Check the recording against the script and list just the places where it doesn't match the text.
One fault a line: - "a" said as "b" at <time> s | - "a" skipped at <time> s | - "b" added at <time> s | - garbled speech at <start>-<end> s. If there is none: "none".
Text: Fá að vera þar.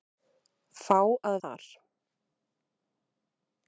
- "vera" skipped at 1.4 s